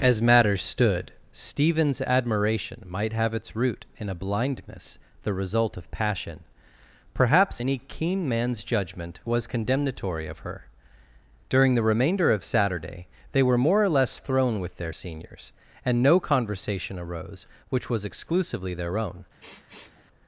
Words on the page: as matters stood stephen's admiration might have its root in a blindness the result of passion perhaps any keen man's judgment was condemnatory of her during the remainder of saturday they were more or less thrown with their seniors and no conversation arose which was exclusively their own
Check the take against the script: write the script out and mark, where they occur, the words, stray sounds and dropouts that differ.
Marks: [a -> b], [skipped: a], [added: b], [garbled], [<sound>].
as matters stood stephen's admiration might have its root in a blindness the result of passion perhaps any keen man's judgment was condemnatory of her during the remainder of saturday they were more or less thrown with their seniors and no conversation arose which was exclusively their own [sniff]